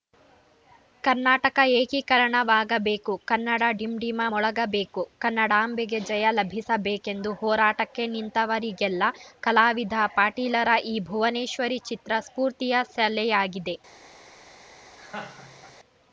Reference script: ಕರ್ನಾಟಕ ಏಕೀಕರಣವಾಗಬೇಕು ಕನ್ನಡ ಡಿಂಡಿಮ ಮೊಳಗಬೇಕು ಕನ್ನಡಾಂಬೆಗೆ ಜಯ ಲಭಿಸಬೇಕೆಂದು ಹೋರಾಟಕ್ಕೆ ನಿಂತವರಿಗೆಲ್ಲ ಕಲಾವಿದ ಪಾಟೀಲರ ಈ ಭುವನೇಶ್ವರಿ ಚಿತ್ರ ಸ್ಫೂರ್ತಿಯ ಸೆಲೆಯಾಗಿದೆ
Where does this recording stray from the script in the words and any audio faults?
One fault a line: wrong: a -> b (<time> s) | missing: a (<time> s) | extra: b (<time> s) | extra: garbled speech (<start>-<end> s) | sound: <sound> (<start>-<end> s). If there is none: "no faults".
sound: laugh (15.0-15.8 s)